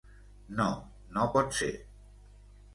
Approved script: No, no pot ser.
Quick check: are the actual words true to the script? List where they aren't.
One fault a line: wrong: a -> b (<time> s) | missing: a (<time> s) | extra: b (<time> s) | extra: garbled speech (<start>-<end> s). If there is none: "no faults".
no faults